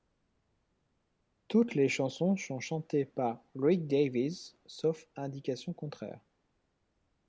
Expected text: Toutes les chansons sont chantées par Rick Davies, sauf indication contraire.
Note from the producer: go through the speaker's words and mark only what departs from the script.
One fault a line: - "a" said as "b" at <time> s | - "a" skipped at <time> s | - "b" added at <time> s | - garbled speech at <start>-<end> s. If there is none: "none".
none